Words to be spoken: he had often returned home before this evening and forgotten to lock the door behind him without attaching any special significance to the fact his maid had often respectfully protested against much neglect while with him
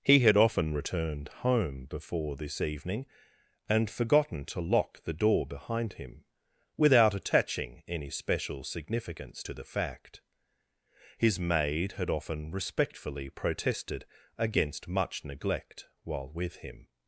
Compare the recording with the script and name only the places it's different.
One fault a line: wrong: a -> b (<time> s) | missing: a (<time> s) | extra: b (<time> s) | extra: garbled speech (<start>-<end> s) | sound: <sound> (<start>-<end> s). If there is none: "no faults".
no faults